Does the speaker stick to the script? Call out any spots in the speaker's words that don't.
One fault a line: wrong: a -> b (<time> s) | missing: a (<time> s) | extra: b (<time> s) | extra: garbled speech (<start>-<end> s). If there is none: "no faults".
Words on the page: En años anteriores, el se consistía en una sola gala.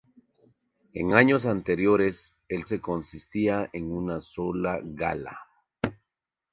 no faults